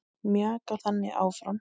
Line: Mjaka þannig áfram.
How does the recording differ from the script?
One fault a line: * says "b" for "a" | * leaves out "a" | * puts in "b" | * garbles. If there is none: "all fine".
all fine